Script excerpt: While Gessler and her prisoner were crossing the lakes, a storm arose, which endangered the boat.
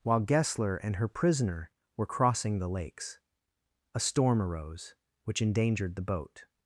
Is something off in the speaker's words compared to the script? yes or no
no